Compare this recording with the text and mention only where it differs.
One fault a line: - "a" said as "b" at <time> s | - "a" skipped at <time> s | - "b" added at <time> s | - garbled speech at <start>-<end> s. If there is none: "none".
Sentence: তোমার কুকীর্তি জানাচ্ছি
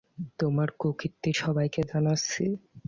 - "সবাইকে" added at 1.4 s